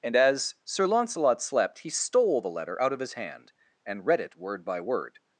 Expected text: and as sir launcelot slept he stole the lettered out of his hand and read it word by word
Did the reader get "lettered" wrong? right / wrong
wrong